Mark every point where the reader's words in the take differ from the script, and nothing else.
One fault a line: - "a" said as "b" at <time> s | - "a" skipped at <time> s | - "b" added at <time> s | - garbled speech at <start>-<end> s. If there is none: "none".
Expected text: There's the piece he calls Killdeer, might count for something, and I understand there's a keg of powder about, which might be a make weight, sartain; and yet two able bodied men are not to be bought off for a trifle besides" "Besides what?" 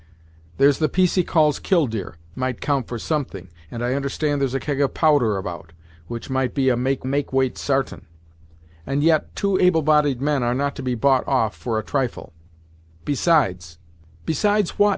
- "make" added at 7.0 s